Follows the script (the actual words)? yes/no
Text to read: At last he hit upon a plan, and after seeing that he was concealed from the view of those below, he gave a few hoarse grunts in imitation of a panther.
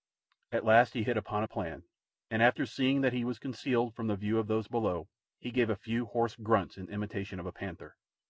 yes